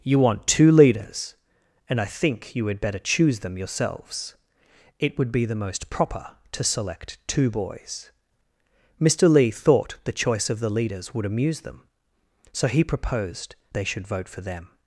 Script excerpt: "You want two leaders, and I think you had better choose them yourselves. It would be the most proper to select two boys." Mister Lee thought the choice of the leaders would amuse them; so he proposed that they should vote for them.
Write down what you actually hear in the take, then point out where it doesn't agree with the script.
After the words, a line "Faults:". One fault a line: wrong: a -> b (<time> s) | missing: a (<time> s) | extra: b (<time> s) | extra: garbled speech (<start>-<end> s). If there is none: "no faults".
"You want two leaders, and I think you had better choose them yourselves. It would be the most proper to select two boys." Mister Lee thought the choice of the leaders would amuse them; so he proposed they should vote for them.
Faults:
missing: that (13.6 s)